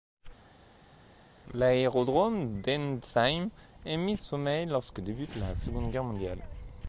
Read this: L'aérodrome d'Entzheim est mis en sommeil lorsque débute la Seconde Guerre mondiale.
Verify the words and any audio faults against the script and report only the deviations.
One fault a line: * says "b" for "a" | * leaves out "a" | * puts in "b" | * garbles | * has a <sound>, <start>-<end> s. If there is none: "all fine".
* leaves out "en"